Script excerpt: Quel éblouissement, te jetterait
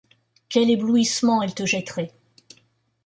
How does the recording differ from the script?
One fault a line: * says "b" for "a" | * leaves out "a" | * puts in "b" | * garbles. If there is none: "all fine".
* puts in "elle"